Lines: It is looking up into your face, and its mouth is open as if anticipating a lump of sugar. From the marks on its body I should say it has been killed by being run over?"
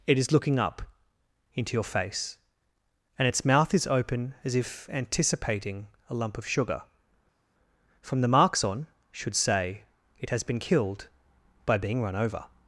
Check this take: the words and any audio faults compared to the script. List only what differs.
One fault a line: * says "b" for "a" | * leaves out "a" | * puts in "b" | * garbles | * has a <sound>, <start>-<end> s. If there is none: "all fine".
* leaves out "its body I"